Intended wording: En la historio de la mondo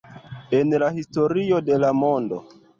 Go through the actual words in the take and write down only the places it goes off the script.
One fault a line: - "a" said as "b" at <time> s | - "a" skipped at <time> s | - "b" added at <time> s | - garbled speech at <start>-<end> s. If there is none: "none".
none